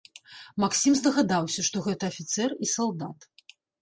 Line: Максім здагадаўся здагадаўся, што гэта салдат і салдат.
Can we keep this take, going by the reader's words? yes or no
no